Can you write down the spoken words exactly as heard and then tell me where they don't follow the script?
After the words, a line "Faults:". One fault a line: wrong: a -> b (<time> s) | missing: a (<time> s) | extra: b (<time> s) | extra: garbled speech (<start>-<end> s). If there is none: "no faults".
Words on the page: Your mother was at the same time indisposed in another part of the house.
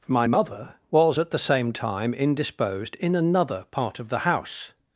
My mother was at the same time indisposed in another part of the house.
Faults:
wrong: Your -> My (0.1 s)